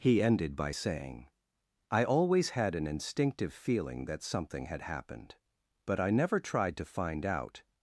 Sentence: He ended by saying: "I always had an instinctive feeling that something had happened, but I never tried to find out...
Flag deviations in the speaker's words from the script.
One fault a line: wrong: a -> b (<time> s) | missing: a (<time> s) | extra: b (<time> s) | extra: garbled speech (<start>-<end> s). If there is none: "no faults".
no faults